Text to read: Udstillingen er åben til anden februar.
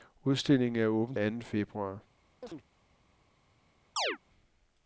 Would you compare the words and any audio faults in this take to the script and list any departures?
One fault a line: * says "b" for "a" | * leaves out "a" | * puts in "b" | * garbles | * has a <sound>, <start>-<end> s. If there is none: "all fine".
* leaves out "til"
* has a chirp, 2.4-2.6 s
* has a chirp, 4.0-4.2 s